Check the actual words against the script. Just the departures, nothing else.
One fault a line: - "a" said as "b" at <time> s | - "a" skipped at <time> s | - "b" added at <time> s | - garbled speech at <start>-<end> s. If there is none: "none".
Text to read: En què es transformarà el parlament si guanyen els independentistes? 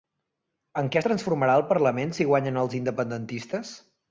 none